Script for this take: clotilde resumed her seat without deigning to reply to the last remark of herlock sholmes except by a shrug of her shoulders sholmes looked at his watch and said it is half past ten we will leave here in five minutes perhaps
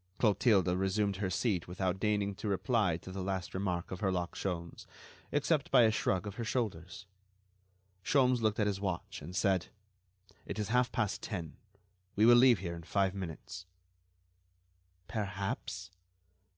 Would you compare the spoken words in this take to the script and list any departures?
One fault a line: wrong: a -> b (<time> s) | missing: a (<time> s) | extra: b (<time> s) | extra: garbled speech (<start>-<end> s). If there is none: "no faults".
no faults